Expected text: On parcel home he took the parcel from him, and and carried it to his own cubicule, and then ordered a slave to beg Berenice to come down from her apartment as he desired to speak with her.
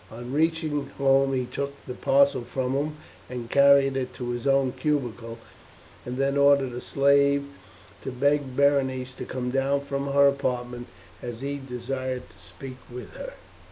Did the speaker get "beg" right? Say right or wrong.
right